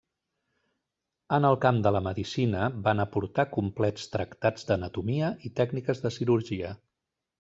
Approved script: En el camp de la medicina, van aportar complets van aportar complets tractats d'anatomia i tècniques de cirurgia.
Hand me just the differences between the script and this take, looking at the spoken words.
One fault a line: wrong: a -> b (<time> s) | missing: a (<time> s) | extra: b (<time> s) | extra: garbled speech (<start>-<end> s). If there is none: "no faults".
missing: van aportar complets (4.1 s)